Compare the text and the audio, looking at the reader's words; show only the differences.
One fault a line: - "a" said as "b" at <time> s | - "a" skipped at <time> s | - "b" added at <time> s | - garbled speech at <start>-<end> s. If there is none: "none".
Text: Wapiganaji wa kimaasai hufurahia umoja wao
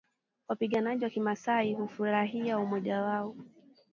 none